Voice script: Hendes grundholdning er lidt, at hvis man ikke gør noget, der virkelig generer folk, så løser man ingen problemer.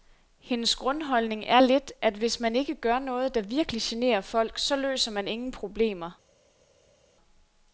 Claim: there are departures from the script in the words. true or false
false